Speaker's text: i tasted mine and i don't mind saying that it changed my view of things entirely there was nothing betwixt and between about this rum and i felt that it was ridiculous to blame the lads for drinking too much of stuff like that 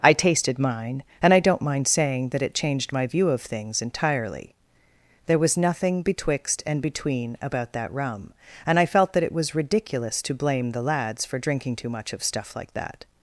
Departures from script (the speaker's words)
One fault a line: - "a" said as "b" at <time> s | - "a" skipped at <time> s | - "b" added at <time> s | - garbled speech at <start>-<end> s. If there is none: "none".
- "this" said as "that" at 7.7 s